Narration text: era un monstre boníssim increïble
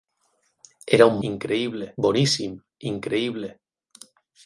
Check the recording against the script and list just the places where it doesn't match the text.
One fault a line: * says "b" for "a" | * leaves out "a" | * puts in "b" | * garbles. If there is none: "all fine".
* says "increïble" for "monstre"